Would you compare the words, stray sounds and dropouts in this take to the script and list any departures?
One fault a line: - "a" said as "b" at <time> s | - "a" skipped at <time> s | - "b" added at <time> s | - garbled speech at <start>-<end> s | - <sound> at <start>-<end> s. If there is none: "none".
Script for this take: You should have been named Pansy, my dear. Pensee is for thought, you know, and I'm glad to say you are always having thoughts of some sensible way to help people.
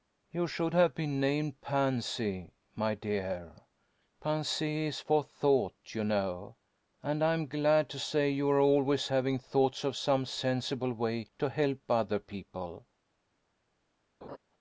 - "other" added at 11.9 s
- laugh at 14.2-14.4 s